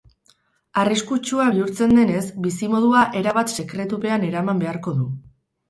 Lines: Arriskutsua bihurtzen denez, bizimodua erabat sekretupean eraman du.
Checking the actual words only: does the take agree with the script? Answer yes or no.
no